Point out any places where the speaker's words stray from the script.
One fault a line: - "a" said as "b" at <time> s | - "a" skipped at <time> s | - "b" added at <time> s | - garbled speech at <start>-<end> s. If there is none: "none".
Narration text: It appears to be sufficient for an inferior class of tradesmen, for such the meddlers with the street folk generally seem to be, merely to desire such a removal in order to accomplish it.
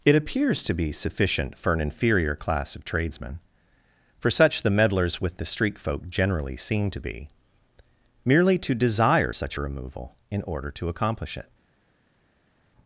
none